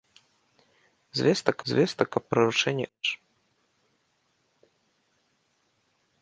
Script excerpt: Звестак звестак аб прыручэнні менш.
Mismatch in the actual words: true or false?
false